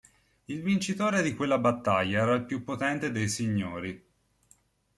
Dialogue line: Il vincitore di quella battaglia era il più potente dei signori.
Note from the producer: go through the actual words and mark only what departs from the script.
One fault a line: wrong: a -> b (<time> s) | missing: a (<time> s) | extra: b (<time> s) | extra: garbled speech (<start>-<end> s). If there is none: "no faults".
no faults